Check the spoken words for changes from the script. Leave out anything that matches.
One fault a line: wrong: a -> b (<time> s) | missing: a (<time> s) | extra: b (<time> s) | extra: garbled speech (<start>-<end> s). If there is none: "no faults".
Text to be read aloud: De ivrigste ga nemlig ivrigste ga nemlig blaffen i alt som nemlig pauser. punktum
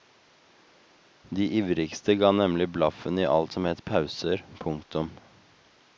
missing: ivrigste ga nemlig (2.7 s)
wrong: nemlig -> het (3.7 s)